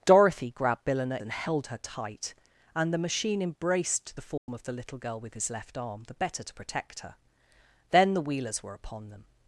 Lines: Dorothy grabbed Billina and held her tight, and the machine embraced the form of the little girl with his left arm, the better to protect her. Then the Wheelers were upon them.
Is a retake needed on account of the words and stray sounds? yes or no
yes